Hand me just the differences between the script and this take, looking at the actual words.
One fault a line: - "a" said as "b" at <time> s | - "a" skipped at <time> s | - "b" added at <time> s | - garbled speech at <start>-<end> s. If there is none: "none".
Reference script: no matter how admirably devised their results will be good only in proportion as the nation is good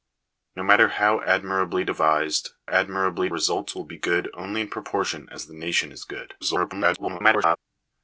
- "their" said as "admirably" at 2.7 s
- garbled speech at 6.4-7.6 s